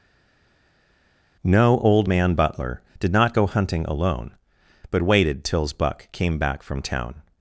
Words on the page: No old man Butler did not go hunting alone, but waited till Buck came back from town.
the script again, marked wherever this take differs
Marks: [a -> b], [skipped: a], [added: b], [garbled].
No old man Butler did not go hunting alone, but waited [till -> tills] Buck came back from town.